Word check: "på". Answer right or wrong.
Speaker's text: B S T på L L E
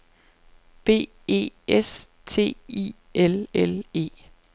wrong